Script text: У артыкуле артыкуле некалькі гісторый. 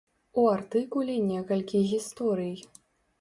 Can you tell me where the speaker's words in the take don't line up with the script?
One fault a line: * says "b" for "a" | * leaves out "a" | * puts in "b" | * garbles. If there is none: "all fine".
* leaves out "артыкуле"